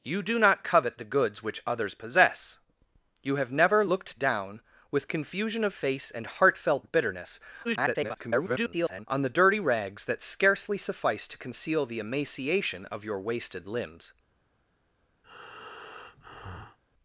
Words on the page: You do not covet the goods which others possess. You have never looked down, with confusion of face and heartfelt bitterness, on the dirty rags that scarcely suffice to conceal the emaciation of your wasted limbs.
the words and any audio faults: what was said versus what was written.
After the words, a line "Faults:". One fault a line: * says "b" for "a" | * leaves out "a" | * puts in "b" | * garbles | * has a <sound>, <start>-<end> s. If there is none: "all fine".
You do not covet the goods which others possess. You have never looked down, with confusion of face and heartfelt bitterness, [garbled] on the dirty rags that scarcely suffice to conceal the emaciation of your wasted limbs.
Faults:
* garbles
* has a breath, 15.2-16.8 s